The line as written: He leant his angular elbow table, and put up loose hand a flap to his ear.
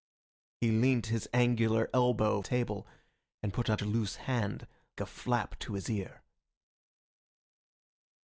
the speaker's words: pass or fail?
pass